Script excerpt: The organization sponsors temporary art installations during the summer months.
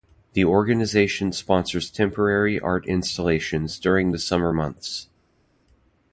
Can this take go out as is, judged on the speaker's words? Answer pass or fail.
pass